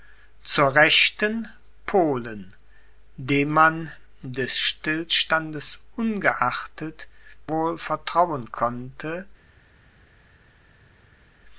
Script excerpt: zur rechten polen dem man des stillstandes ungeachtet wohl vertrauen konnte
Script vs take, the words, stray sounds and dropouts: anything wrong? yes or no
no